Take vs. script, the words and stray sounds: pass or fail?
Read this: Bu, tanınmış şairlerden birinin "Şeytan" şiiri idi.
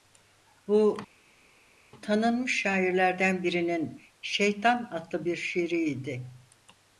fail